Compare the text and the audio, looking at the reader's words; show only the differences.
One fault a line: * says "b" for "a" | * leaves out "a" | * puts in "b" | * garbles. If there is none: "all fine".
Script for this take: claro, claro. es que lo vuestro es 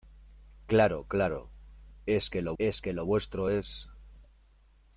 * puts in "es que lo"